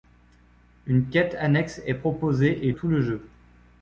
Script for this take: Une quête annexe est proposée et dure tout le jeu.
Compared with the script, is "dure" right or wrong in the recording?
wrong